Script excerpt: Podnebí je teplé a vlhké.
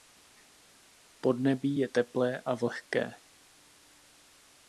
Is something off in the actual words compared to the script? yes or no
no